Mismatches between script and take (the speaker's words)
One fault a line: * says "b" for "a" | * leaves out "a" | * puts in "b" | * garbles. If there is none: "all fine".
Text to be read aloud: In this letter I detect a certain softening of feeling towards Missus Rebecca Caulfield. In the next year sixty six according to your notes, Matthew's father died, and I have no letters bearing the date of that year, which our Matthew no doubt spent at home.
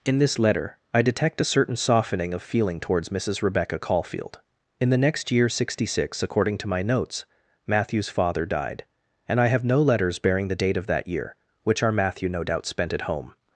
* says "my" for "your"